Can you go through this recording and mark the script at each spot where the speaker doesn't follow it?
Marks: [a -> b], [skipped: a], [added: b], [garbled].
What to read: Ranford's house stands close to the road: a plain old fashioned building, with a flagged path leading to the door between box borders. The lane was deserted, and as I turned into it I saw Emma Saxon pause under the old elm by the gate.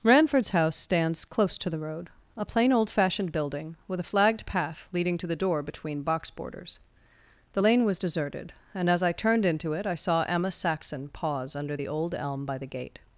Ranford's house stands close to the road: a plain old fashioned building, with a flagged path leading to the door between box borders. The lane was deserted, and as I turned into it I saw Emma Saxon pause under the old elm by the gate.